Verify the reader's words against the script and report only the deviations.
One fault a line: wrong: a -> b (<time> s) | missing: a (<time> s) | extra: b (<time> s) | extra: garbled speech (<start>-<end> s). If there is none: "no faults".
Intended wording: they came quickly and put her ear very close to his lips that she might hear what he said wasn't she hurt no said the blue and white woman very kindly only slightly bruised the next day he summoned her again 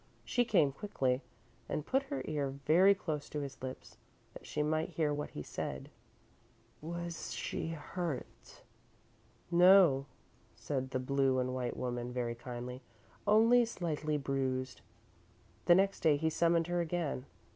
wrong: they -> she (0.2 s)
wrong: wasn't -> was (6.8 s)